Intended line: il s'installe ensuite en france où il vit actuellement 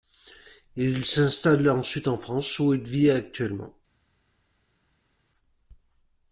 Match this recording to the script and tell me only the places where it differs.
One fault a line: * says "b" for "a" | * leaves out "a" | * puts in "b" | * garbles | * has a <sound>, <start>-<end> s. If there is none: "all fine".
all fine